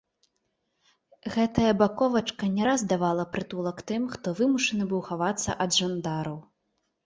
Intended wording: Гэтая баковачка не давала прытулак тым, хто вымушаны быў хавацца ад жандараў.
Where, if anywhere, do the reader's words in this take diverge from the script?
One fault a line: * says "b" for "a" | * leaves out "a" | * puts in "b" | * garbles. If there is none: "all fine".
* puts in "раз"